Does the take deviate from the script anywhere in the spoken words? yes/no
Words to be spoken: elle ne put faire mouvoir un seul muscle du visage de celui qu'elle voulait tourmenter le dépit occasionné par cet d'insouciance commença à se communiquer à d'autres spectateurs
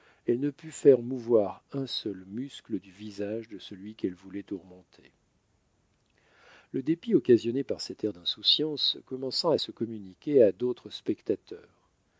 yes